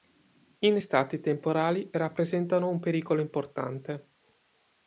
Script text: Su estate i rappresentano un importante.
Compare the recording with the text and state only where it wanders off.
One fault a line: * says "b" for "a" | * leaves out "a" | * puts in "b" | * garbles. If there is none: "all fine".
* says "In" for "Su"
* puts in "temporali"
* puts in "pericolo"